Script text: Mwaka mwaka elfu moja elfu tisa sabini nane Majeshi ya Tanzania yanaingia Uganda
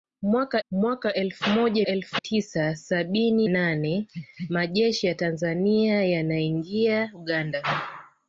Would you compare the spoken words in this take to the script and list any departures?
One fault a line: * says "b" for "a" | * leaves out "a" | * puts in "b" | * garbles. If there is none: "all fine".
all fine